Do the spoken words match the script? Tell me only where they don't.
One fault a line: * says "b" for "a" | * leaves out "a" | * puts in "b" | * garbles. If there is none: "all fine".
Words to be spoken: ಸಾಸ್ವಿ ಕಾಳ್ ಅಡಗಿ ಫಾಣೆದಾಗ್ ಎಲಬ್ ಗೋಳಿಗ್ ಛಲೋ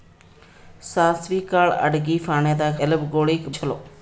all fine